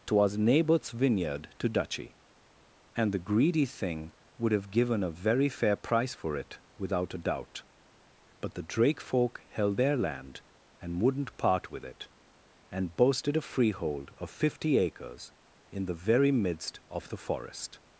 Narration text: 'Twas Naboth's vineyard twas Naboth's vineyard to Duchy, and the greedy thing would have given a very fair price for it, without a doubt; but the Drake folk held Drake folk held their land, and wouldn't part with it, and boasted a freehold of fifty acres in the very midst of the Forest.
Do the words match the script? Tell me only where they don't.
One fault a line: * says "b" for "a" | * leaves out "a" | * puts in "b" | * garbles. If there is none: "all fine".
* leaves out "twas Naboth's vineyard"
* leaves out "Drake folk held"